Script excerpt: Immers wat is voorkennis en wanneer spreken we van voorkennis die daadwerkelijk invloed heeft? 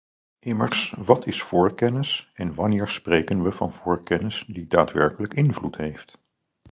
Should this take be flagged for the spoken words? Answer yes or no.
no